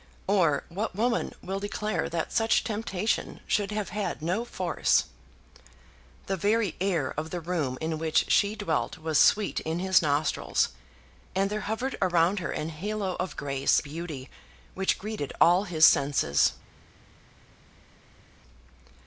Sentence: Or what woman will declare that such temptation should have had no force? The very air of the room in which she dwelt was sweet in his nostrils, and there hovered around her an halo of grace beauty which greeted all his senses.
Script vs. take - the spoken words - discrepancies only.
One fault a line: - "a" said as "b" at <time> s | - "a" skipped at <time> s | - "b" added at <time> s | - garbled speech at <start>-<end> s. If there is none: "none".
none